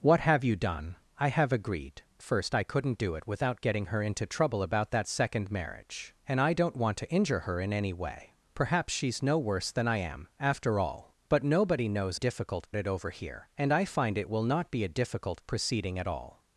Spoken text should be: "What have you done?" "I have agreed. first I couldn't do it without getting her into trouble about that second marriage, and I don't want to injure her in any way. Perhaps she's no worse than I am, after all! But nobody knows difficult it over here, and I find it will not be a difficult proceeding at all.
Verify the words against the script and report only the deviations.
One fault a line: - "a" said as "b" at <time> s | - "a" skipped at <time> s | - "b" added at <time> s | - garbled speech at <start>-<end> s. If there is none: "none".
none